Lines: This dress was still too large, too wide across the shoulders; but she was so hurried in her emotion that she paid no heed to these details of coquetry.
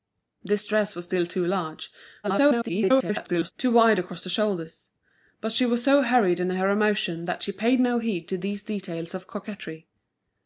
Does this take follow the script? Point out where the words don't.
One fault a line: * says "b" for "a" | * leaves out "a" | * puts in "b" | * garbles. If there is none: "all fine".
* garbles